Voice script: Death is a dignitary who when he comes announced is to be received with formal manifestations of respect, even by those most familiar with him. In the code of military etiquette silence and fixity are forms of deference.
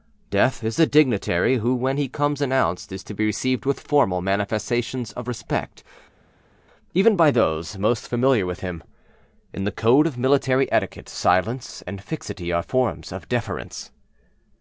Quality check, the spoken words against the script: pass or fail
pass